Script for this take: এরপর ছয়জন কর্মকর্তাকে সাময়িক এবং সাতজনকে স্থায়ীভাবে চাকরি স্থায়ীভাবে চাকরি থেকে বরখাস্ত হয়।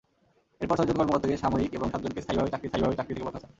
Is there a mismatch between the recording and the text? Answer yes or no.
no